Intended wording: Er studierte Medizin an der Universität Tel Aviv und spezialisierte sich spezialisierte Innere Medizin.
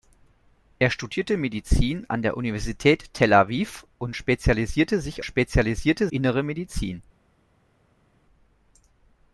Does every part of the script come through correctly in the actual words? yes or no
yes